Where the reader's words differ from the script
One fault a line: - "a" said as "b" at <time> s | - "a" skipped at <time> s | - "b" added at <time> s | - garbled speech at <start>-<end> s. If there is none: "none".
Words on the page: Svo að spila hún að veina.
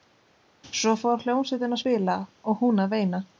- "fór hljómsveitin" added at 1.0 s
- "og" added at 2.5 s